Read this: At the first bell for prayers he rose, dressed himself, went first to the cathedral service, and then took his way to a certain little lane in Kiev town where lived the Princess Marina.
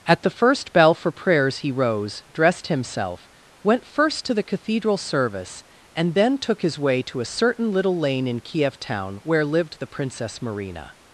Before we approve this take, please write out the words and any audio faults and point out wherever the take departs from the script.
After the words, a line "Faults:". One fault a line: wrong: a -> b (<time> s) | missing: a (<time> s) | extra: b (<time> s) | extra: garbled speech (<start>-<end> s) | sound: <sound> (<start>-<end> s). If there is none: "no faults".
At the first bell for prayers he rose, dressed himself, went first to the cathedral service, and then took his way to a certain little lane in Kiev town where lived the Princess Marina.
Faults:
no faults